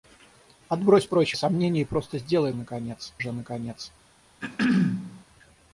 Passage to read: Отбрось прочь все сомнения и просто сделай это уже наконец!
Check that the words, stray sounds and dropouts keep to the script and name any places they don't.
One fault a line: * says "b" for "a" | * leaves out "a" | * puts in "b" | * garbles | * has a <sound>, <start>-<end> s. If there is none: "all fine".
* leaves out "все"
* says "наконец" for "это"
* has a throat clearing, 4.4-5.2 s